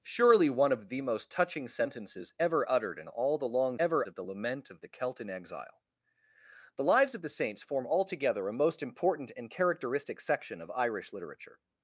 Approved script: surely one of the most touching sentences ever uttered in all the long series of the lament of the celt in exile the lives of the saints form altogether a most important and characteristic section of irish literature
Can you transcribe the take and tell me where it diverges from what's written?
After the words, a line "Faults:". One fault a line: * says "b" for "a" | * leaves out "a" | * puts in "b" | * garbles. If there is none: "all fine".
surely one of the most touching sentences ever uttered in all the long ever of the lament of the celt in exile the lives of the saints form altogether a most important and characteristic section of irish literature
Faults:
* says "ever" for "series"